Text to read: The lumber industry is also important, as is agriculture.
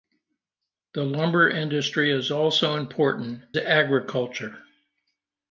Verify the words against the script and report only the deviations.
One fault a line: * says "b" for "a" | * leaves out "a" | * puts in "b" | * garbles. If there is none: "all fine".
* leaves out "as is"